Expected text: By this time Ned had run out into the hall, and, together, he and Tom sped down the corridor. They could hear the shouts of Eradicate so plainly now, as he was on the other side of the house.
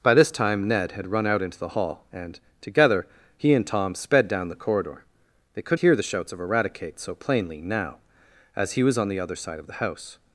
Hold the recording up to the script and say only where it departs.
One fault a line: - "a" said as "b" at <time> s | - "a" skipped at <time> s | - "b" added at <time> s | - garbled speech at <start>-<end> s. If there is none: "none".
none